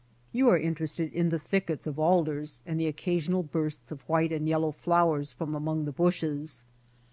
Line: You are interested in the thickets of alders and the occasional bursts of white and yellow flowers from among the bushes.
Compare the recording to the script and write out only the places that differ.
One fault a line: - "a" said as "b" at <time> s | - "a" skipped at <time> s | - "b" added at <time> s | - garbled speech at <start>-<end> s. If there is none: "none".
none